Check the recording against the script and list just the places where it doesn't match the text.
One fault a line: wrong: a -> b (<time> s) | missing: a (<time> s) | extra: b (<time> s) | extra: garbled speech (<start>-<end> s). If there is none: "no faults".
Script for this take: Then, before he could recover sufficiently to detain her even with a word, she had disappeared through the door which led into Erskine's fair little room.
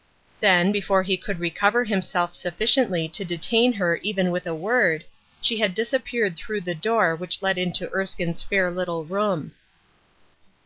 extra: himself (1.8 s)